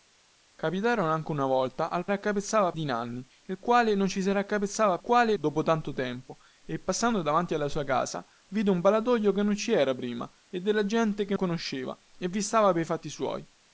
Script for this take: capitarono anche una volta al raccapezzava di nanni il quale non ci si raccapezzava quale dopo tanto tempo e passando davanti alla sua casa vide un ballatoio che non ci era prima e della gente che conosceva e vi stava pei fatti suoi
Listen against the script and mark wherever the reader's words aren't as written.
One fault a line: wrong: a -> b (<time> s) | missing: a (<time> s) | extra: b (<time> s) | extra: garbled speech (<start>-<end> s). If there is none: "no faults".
no faults